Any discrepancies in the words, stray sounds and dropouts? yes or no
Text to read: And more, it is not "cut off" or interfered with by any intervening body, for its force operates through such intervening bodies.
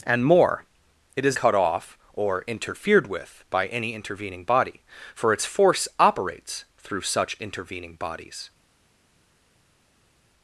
yes